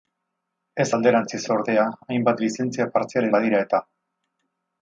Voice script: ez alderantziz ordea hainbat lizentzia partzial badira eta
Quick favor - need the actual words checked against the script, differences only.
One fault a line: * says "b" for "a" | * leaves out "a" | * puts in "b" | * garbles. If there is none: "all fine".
all fine